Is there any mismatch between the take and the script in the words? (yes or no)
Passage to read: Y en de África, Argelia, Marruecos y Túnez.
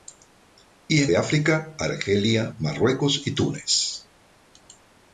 no